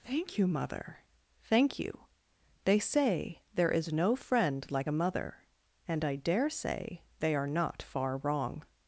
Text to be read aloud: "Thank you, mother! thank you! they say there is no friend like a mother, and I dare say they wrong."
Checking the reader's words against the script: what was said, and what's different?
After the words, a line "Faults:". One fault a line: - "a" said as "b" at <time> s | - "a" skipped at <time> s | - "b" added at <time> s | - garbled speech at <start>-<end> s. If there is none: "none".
"Thank you, mother! thank you! they say there is no friend like a mother, and I dare say they are not far wrong."
Faults:
- "are not far" added at 7.3 s